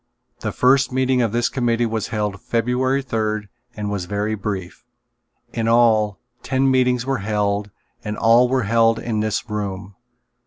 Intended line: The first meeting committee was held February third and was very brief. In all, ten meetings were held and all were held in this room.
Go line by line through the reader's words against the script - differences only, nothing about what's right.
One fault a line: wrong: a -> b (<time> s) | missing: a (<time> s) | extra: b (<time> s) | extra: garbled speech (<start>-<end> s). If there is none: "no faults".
extra: of this (1.2 s)